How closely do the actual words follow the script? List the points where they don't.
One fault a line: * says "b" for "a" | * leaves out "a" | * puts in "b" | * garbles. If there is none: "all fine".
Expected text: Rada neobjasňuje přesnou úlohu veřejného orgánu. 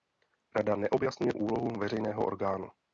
* leaves out "přesnou"